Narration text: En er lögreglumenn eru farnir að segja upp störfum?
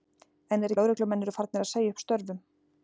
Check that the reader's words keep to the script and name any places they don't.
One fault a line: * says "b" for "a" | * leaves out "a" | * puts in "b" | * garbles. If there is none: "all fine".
all fine